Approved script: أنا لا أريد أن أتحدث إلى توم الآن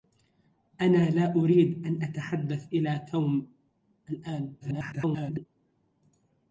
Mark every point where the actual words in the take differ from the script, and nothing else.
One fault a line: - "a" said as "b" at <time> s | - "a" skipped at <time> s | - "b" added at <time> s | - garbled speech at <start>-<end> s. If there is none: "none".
- garbled speech at 4.6-5.5 s